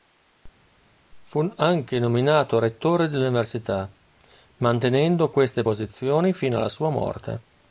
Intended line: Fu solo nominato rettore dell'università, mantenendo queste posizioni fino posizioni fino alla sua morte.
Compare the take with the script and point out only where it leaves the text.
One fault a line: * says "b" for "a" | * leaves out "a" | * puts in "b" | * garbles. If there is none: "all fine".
* says "anche" for "solo"
* leaves out "posizioni fino"